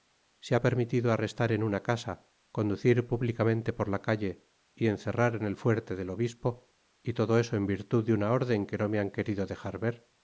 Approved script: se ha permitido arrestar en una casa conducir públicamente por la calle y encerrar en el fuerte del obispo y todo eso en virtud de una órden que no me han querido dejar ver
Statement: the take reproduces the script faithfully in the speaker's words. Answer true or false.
true